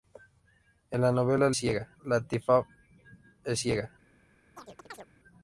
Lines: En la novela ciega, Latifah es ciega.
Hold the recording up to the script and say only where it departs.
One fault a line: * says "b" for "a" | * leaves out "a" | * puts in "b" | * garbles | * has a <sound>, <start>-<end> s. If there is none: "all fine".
* has a chirp, 4.6-5.1 s